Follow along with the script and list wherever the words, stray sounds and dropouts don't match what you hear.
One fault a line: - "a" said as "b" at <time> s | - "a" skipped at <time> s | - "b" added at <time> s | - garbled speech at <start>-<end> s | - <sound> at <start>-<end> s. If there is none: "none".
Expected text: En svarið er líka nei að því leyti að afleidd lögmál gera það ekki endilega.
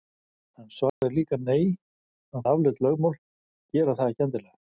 - dropout at 0.9-1.0 s
- "því leyti" skipped at 2.5 s